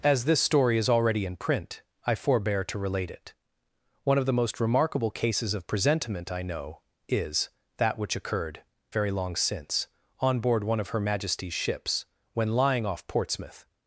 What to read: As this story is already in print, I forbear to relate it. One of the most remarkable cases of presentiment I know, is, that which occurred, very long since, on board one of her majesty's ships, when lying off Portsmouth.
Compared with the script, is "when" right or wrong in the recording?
right